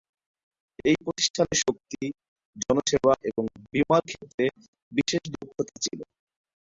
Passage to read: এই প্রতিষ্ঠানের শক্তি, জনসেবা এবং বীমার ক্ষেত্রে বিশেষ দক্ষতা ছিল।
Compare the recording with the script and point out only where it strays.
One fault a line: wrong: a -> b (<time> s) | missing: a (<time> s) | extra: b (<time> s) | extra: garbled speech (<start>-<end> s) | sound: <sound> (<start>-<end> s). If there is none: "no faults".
no faults